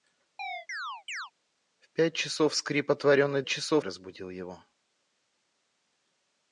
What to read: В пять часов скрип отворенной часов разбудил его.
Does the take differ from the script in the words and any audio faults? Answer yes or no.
yes